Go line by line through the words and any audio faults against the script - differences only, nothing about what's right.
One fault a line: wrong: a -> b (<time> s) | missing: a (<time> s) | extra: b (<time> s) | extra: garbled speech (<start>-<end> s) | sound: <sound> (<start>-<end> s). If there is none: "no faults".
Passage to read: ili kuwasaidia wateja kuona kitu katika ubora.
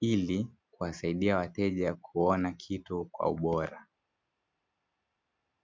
wrong: katika -> kwa (3.0 s)